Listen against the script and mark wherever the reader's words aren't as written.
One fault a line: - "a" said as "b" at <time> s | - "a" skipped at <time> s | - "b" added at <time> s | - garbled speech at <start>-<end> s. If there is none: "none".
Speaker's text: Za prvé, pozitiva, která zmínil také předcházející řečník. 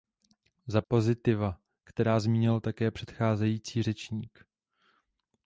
- "prvé" skipped at 0.8 s